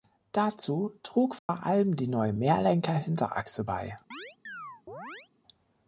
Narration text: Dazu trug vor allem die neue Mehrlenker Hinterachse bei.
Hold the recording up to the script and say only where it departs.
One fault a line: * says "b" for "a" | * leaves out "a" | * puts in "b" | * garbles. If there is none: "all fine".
all fine